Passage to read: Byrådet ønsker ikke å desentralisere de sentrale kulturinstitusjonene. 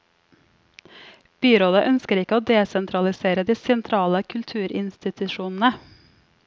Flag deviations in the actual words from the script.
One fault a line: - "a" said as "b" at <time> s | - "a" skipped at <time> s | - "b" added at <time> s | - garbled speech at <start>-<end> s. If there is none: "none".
none